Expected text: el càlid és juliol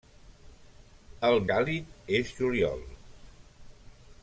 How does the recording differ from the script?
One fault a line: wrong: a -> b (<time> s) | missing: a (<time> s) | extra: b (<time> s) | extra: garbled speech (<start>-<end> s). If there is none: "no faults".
no faults